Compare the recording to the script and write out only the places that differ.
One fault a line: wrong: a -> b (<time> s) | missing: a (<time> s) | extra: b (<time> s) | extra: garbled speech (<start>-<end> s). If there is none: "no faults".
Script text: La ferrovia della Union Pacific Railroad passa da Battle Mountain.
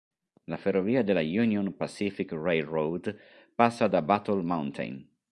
no faults